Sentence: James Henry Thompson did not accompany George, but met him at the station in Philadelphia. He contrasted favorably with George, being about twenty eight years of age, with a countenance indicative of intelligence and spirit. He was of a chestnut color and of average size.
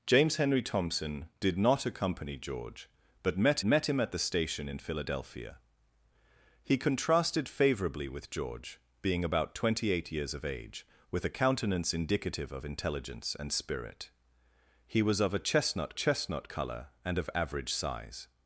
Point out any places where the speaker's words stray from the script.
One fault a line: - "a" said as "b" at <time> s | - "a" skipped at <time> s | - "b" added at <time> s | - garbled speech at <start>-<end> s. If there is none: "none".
- "met" added at 3.6 s
- "chestnut" added at 15.9 s